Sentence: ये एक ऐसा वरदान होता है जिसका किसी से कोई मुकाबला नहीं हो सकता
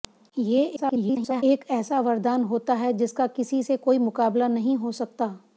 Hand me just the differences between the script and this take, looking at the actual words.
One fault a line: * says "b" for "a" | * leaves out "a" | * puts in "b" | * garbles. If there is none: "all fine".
* garbles